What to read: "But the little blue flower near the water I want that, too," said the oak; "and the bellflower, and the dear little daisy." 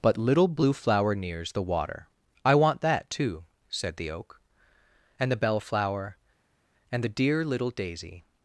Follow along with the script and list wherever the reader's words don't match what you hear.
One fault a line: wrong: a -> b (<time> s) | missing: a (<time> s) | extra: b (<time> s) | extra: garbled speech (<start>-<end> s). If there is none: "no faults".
missing: the (0.2 s)
wrong: near -> nears (1.1 s)